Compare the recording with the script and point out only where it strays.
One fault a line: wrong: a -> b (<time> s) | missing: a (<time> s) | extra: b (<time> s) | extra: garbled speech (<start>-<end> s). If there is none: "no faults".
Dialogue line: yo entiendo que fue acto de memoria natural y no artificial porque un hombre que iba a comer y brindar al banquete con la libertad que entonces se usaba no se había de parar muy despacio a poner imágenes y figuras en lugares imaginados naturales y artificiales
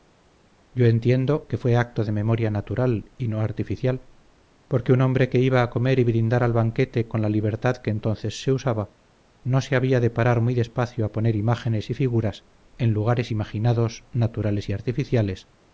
no faults